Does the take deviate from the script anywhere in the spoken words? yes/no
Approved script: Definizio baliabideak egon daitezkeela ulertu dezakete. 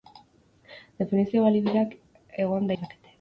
yes